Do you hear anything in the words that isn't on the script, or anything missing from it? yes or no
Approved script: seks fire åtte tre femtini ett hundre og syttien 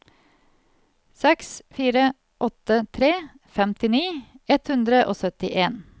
no